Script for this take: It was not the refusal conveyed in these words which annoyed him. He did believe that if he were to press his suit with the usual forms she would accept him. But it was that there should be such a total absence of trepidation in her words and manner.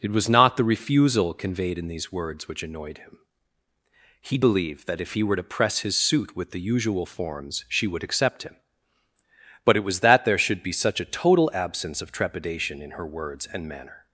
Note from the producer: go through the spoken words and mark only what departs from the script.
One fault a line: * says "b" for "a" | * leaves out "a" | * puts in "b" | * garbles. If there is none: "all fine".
* leaves out "did"